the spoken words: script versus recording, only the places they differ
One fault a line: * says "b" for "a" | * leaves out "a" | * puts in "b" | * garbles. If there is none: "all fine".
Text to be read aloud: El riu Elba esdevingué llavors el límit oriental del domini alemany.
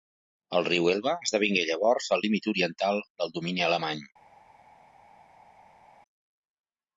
all fine